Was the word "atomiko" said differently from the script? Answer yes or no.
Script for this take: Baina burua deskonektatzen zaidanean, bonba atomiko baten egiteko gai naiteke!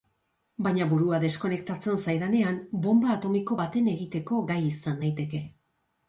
no